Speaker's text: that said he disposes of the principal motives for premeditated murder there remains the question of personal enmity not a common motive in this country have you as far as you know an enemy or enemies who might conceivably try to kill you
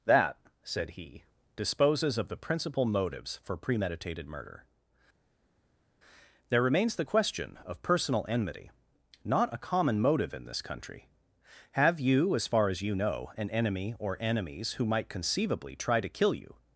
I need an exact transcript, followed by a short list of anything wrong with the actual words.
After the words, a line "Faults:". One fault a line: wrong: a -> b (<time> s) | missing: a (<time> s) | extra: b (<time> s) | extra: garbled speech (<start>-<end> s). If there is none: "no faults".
that said he disposes of the principal motives for premeditated murder there remains the question of personal enmity not a common motive in this country have you as far as you know an enemy or enemies who might conceivably try to kill you
Faults:
no faults